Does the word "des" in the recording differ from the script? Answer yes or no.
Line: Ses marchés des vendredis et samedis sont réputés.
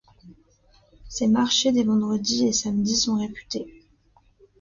no